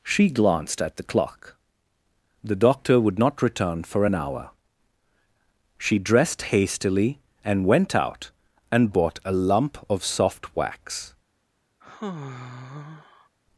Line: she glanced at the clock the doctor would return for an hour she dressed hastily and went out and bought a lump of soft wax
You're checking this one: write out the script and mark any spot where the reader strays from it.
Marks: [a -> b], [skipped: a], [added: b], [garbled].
she glanced at the clock the doctor would [added: not] return for an hour she dressed hastily and went out and bought a lump of soft wax